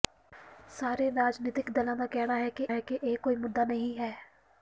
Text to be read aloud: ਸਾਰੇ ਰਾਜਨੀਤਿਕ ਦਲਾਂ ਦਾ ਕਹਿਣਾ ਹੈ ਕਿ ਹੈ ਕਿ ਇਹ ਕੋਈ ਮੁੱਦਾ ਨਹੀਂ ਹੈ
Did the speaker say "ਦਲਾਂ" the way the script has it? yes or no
yes